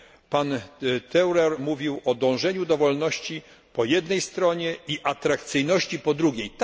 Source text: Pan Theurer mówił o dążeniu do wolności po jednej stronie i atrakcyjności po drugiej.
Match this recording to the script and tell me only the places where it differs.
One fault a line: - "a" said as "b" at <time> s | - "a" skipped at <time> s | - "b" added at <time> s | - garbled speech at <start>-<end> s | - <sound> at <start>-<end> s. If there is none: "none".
none